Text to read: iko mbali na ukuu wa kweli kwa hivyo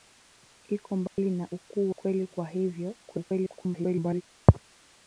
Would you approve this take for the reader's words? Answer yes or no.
no